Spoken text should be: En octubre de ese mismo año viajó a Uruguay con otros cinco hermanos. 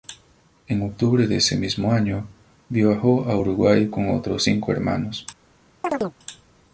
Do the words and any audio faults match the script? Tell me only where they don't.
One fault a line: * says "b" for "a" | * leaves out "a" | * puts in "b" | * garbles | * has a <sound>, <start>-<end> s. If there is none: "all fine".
* has a chirp, 5.8-6.2 s